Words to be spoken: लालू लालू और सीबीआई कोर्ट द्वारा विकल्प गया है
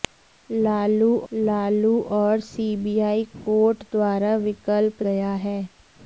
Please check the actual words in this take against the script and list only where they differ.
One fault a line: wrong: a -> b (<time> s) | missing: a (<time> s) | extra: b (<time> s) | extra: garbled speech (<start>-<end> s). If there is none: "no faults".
no faults